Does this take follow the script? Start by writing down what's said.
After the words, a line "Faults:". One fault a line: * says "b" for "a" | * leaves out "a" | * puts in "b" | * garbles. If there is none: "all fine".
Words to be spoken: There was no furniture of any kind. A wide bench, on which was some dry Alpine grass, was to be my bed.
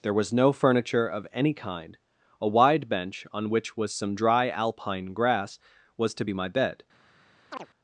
There was no furniture of any kind. A wide bench, on which was some dry Alpine grass, was to be my bed.
Faults:
all fine